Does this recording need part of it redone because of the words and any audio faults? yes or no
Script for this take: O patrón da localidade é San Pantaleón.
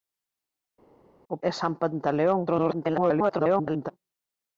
yes